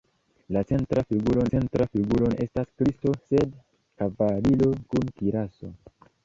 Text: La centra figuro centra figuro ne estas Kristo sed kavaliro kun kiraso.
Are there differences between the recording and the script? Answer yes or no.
no